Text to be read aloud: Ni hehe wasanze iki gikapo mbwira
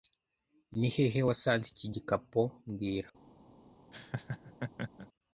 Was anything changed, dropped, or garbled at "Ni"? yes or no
no